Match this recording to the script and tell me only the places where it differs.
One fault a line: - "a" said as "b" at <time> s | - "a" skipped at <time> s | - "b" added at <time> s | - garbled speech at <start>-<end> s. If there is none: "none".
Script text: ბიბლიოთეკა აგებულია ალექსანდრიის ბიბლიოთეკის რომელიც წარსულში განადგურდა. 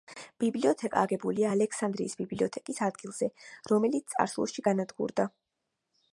- "ადგილზე" added at 2.9 s